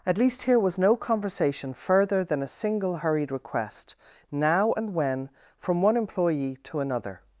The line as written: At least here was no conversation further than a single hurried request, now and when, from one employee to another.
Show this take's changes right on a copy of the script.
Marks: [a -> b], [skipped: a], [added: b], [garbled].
At least here was no conversation further than a single hurried request, now and when, from one employee to another.